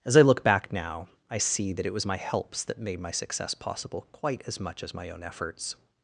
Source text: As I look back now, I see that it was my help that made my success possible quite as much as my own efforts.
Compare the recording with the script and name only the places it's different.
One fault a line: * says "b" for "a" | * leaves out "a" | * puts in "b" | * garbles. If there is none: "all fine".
* says "helps" for "help"